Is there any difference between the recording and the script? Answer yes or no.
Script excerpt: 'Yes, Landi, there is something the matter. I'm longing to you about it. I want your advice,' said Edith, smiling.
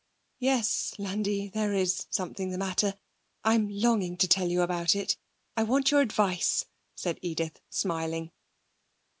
yes